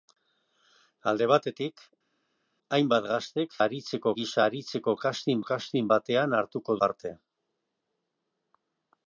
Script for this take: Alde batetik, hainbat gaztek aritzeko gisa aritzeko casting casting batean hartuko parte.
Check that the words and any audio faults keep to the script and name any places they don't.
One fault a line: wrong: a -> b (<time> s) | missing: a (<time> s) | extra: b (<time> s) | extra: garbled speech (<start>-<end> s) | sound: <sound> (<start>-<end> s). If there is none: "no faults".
no faults